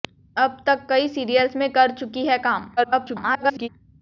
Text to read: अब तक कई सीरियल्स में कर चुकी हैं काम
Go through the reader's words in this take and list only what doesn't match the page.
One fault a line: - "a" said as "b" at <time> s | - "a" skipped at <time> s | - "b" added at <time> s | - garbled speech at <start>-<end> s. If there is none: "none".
- garbled speech at 2.8-3.7 s